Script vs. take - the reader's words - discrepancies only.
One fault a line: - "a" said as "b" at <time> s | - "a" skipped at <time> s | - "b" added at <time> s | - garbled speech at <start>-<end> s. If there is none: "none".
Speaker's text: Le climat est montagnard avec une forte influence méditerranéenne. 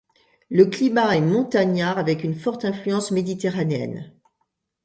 none